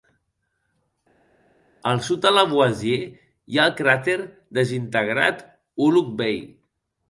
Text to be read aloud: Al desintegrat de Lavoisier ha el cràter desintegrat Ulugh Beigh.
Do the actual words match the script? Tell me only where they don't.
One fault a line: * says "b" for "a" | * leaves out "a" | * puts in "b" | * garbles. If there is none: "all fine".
* says "sud" for "desintegrat"
* puts in "hi"